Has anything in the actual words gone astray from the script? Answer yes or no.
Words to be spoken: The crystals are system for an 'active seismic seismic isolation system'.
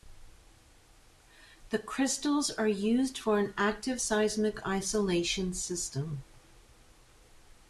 yes